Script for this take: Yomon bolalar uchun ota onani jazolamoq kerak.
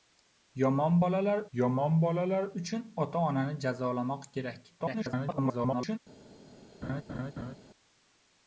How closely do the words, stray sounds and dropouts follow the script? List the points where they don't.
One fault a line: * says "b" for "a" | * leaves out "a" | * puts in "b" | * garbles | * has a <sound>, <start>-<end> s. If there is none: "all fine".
* puts in "yomon bolalar"
* garbles
* has a laugh, 6.8-7.6 s